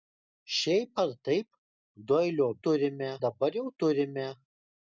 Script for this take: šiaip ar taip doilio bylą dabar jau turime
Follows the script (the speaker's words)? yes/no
no